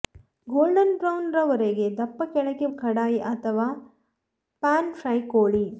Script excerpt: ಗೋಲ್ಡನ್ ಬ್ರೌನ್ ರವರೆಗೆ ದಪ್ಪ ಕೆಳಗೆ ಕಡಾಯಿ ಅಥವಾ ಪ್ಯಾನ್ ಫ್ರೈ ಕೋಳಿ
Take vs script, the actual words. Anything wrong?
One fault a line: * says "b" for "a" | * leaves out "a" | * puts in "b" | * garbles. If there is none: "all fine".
all fine